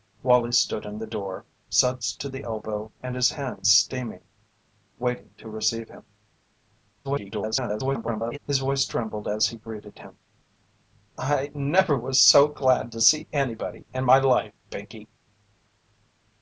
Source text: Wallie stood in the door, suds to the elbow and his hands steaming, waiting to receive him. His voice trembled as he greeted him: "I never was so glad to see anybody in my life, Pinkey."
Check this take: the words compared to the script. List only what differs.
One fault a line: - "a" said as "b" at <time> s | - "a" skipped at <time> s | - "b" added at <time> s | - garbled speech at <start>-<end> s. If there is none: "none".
- garbled speech at 7.0-8.4 s